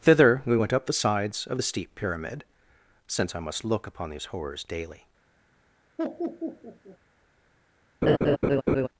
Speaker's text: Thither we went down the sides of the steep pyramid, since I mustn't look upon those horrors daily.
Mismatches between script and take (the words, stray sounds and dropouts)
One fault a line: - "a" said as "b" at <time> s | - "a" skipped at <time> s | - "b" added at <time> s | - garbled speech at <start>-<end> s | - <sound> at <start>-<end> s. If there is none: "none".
- "down" said as "up" at 0.7 s
- "mustn't" said as "must" at 3.4 s
- "those" said as "these" at 4.1 s
- laugh at 6.0-7.0 s
- laugh at 8.0-8.9 s